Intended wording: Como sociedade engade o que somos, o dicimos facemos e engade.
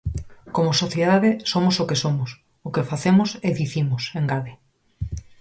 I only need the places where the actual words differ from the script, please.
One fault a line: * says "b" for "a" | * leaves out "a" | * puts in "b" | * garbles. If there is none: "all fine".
* says "somos" for "engade"
* says "que" for "dicimos"
* puts in "dicimos"